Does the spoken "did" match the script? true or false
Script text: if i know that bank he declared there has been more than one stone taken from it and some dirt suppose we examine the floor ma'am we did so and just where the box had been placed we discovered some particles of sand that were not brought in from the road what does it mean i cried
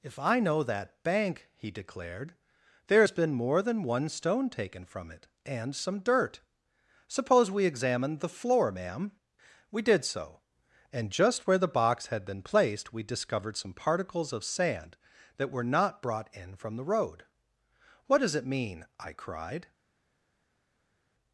true